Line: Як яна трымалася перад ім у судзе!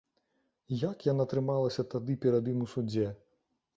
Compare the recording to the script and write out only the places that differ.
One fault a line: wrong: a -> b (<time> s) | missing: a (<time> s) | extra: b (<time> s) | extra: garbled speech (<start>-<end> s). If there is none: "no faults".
extra: тады (1.9 s)